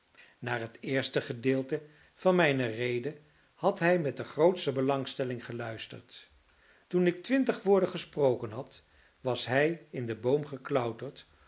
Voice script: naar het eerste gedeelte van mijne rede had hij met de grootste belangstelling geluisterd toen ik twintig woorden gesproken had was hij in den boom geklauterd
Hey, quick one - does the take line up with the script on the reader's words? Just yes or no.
yes